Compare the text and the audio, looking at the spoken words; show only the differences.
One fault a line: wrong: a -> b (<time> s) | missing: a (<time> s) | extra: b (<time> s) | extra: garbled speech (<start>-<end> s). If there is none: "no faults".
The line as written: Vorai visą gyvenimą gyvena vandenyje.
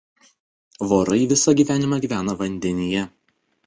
no faults